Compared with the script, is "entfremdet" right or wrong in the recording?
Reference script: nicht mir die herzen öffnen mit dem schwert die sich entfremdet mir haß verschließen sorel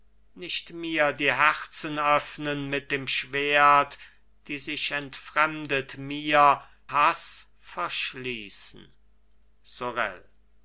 right